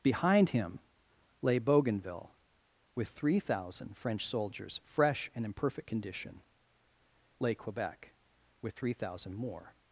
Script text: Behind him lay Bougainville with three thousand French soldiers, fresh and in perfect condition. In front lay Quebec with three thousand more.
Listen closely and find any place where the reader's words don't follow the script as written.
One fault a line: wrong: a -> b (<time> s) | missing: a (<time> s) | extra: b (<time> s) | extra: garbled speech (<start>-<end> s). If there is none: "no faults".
missing: In front (6.4 s)